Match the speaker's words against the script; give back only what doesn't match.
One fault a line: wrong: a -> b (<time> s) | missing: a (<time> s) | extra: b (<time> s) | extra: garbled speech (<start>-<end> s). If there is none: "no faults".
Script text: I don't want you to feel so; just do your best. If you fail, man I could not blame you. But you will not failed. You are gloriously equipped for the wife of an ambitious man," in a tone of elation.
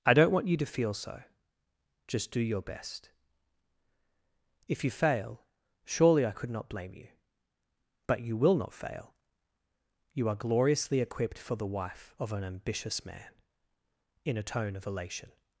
wrong: man -> surely (5.8 s)
wrong: failed -> fail (8.7 s)